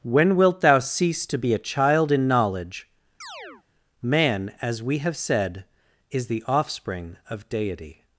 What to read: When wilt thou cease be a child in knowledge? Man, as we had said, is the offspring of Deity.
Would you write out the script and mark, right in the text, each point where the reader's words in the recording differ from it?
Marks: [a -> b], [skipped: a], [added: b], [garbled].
When wilt thou cease [added: to] be a child in knowledge? Man, as we [had -> have] said, is the offspring of Deity.